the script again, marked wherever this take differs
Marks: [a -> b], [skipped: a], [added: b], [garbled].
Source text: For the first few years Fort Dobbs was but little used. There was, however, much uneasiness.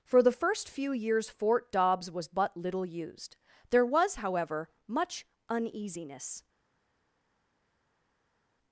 For the first few years Fort Dobbs was but little used. There was, however, much uneasiness.